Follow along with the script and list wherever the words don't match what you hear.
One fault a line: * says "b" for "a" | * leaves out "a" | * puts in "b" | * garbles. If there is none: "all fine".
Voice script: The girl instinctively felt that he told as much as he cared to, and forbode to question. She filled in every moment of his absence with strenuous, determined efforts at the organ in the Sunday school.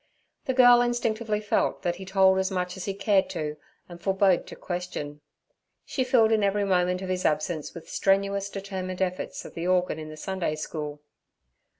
all fine